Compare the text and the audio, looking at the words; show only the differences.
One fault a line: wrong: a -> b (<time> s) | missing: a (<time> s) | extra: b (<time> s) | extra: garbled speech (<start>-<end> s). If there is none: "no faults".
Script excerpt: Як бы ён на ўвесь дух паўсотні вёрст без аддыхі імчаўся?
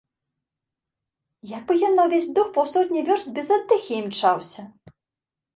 no faults